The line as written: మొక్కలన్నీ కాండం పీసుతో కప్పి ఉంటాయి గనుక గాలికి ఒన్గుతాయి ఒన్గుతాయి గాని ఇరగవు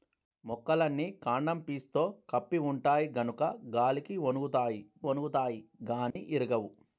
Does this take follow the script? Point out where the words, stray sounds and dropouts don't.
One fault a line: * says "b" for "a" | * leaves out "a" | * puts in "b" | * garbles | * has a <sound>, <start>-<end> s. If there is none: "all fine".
* has a dropout, 6.1-6.2 s